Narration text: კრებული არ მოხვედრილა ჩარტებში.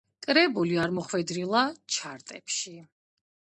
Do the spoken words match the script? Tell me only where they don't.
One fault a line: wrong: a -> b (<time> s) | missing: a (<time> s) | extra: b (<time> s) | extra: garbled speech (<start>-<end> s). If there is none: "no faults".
no faults